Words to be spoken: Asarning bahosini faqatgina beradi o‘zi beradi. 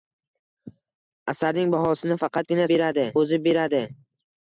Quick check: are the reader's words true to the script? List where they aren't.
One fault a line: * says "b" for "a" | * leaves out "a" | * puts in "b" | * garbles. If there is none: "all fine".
all fine